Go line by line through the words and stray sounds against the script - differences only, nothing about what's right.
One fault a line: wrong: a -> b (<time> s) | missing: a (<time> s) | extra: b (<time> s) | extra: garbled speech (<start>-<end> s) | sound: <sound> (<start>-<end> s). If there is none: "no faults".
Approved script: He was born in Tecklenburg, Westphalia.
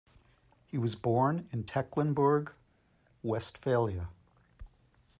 no faults